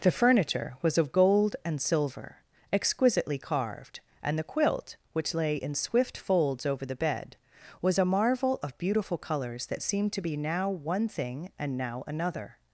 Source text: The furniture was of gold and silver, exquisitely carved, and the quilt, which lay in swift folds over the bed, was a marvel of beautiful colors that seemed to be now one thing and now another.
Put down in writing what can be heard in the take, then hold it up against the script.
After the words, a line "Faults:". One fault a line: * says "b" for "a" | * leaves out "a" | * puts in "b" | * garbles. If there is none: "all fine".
The furniture was of gold and silver, exquisitely carved, and the quilt, which lay in swift folds over the bed, was a marvel of beautiful colors that seemed to be now one thing and now another.
Faults:
all fine